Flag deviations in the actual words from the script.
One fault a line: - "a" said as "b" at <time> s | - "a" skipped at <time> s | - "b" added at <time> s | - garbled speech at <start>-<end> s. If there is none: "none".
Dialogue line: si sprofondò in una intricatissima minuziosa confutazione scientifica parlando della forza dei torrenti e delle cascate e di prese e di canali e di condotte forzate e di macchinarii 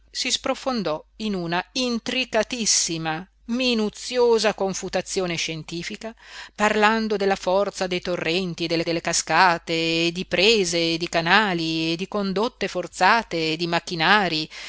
- "delle" added at 8.8 s